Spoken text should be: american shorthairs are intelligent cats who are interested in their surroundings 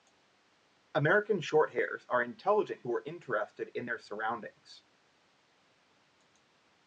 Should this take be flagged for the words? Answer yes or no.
yes